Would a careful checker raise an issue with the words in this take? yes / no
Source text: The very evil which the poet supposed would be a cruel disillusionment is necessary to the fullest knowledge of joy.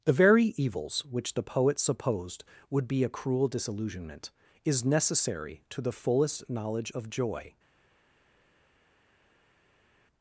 yes